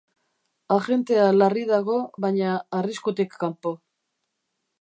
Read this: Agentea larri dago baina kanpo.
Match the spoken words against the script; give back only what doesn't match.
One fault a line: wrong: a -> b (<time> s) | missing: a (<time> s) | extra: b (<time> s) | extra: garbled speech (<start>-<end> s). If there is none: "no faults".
extra: arriskutik (2.8 s)